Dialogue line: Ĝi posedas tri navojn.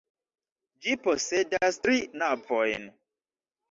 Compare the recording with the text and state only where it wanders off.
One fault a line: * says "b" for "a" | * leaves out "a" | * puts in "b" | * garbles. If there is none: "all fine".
all fine